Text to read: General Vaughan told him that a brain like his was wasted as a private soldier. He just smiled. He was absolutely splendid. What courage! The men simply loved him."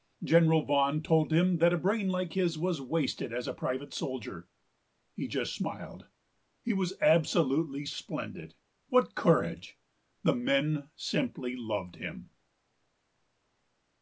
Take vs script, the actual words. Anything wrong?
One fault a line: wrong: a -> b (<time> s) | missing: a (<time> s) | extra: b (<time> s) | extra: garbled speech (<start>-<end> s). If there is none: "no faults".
no faults